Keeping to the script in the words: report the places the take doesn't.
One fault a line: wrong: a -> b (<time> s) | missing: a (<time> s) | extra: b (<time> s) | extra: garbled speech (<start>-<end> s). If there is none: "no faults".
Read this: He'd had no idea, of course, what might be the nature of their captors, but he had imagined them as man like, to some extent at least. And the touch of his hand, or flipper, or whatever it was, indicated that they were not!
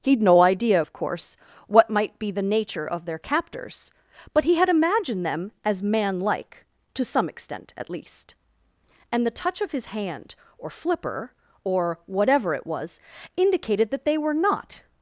missing: had (0.2 s)